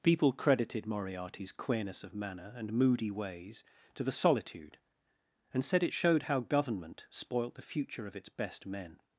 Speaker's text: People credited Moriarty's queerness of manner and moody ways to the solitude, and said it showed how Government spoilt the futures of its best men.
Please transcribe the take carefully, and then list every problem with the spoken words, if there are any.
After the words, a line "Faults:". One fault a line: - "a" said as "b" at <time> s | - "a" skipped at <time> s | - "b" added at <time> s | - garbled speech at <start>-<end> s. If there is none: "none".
People credited Moriarty's queerness of manner and moody ways to the solitude, and said it showed how Government spoilt the future of its best men.
Faults:
- "futures" said as "future" at 7.6 s